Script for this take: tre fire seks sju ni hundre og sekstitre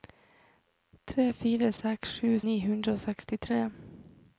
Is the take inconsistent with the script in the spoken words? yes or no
no